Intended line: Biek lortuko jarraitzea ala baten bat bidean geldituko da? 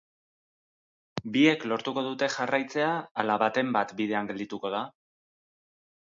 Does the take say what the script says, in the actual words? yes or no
no